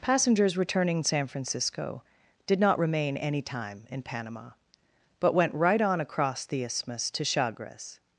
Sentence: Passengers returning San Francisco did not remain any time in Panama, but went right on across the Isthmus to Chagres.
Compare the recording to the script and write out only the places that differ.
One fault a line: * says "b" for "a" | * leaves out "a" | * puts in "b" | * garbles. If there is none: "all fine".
all fine